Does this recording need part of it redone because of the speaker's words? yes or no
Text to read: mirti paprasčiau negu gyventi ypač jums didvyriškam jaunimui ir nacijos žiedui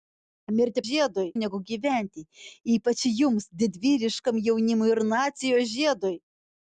yes